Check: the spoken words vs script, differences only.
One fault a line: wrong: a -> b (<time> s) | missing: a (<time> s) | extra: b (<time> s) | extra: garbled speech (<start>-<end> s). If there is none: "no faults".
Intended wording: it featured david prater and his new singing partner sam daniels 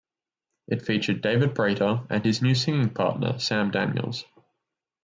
no faults